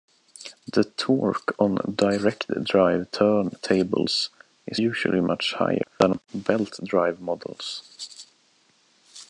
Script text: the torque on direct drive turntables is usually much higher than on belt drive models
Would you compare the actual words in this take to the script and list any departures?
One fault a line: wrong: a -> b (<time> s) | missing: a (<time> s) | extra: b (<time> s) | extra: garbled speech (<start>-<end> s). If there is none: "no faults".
no faults